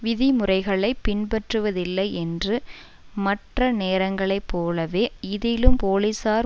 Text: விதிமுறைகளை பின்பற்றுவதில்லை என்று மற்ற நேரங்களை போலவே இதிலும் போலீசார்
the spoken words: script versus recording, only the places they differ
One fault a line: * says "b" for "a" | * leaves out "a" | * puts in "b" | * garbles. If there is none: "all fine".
all fine